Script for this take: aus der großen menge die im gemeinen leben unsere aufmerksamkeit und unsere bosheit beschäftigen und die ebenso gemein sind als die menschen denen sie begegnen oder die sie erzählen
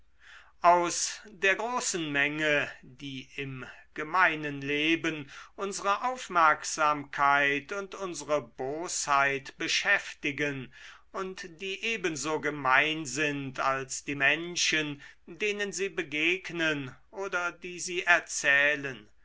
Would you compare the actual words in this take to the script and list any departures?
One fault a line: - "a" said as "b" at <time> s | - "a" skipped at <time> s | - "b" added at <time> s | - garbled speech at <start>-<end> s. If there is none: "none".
none